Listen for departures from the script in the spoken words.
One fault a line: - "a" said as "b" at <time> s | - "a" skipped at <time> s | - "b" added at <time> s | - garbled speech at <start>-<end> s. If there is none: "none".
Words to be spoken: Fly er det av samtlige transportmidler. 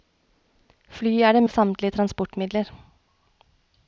none